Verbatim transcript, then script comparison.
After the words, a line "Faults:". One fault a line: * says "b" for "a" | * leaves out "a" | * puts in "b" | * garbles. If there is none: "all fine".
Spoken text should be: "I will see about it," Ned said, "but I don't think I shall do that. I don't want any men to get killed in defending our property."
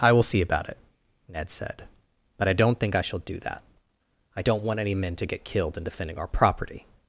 "I will see about it," Ned said, "but I don't think I shall do that. I don't want any men to get killed in defending our property."
Faults:
all fine